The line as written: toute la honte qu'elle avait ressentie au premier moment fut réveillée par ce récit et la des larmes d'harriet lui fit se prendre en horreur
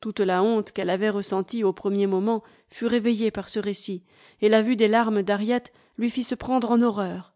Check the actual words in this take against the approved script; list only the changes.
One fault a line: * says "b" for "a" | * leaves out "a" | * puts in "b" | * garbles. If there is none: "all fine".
* puts in "vue"